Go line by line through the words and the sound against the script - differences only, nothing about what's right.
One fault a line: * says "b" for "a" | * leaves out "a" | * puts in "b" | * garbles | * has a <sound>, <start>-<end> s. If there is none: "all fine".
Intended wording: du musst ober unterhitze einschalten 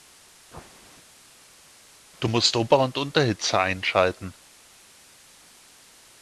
* puts in "und"